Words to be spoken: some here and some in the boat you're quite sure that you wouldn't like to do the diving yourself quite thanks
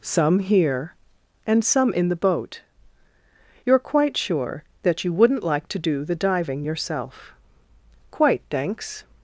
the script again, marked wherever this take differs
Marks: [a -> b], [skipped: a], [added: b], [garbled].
some here and some in the boat you're quite sure that you wouldn't like to do the diving yourself quite thanks